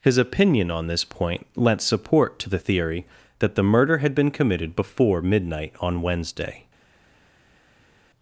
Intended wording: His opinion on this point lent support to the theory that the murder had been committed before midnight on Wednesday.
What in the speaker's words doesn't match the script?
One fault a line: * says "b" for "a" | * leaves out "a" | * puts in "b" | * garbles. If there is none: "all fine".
all fine